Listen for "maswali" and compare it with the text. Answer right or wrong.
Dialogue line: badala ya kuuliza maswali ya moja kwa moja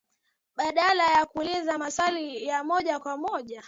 right